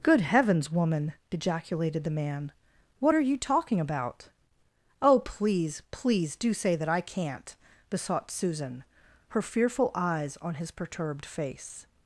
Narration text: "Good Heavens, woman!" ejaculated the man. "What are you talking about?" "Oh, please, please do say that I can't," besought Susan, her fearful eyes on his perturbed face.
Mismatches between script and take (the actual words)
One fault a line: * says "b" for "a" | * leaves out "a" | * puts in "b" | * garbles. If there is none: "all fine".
all fine